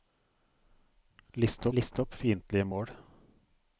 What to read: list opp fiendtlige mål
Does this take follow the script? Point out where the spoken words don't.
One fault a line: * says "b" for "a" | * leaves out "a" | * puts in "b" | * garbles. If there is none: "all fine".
* puts in "list"